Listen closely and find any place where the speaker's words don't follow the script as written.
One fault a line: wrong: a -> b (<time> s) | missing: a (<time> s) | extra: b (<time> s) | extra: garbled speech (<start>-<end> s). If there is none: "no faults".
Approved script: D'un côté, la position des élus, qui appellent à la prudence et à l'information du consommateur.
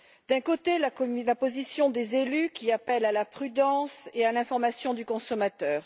no faults